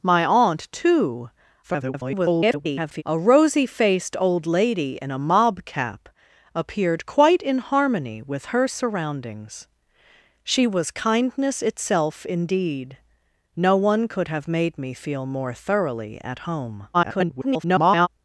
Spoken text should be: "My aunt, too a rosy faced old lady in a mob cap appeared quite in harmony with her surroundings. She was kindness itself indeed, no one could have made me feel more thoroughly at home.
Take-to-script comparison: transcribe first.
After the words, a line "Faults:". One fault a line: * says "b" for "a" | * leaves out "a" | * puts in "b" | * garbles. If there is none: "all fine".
"My aunt, too [garbled] a rosy faced old lady in a mob cap appeared quite in harmony with her surroundings. She was kindness itself indeed, no one could have made me feel more thoroughly at home. [garbled]
Faults:
* garbles
* garbles